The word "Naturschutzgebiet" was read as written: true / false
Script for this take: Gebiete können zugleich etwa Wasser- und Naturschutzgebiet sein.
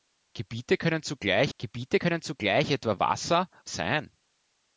false